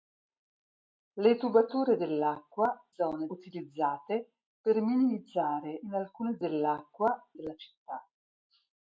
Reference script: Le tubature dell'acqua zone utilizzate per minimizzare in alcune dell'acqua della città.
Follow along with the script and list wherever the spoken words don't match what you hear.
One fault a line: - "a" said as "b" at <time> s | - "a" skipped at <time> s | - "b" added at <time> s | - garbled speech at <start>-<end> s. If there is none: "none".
none